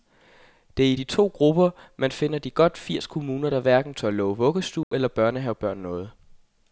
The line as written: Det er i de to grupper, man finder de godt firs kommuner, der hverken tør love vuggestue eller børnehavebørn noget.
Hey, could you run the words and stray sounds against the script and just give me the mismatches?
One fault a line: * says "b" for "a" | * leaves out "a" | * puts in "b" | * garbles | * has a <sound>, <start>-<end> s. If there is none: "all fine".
* has a dropout, 4.8-4.9 s